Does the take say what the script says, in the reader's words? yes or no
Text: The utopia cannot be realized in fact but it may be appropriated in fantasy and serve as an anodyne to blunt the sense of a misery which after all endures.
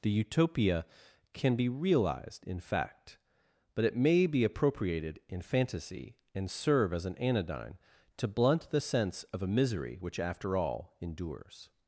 no